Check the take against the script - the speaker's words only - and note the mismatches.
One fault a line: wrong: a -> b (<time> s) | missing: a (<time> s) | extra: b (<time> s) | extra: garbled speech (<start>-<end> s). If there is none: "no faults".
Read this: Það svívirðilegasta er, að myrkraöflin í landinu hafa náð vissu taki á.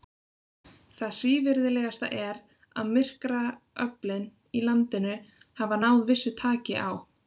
no faults